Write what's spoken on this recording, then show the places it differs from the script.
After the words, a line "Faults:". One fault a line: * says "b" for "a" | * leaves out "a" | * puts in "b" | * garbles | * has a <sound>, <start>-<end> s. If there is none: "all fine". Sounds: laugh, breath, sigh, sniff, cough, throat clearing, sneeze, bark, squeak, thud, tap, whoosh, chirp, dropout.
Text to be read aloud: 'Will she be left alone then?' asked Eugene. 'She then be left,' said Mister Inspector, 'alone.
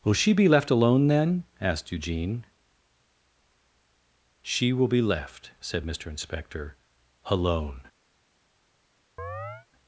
'Will she be left alone then?' asked Eugene. 'She will be left,' said Mister Inspector, 'alone.
Faults:
* says "will" for "then"
* has a chirp, 9.2-9.7 s